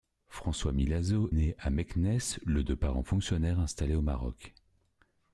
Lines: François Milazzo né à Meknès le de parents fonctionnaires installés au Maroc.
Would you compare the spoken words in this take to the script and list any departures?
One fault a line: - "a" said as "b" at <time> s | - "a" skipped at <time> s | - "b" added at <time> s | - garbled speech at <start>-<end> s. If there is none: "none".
none